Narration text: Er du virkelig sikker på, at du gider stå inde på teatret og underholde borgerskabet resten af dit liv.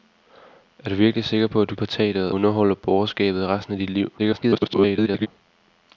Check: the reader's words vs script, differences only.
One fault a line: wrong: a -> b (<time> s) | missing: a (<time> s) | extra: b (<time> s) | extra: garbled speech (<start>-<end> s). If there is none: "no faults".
missing: gider stå inde (1.8 s)
missing: og (2.3 s)
extra: garbled speech (4.2-5.3 s)